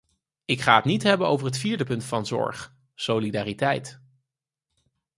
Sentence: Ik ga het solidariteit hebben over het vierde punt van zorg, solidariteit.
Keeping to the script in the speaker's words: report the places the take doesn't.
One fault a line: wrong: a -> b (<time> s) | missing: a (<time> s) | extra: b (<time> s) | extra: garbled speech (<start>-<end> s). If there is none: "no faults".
wrong: solidariteit -> niet (0.8 s)